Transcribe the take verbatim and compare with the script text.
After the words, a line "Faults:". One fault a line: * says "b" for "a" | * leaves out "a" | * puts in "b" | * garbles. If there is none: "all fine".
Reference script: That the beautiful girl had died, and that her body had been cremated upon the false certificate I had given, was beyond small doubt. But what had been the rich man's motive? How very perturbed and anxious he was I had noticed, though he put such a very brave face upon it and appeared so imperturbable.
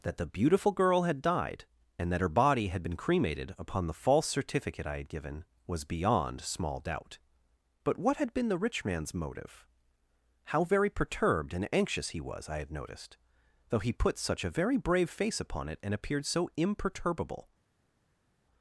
That the beautiful girl had died, and that her body had been cremated upon the false certificate I had given, was beyond small doubt. But what had been the rich man's motive? How very perturbed and anxious he was I had noticed, though he put such a very brave face upon it and appeared so imperturbable.
Faults:
all fine